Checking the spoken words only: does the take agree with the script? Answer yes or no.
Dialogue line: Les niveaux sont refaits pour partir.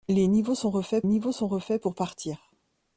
no